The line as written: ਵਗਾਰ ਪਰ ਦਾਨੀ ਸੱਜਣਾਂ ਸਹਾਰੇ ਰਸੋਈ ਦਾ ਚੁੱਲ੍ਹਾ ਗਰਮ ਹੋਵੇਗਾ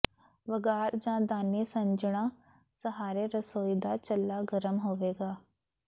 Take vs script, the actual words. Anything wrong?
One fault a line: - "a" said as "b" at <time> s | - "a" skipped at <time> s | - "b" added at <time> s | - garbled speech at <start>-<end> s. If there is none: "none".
- "ਪਰ" said as "ਜਾਂ" at 0.9 s